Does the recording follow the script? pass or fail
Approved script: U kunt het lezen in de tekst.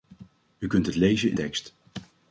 fail